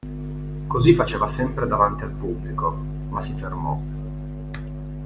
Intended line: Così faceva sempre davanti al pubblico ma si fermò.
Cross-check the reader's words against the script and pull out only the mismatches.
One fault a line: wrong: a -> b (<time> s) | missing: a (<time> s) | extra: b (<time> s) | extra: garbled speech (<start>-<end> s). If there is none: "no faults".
no faults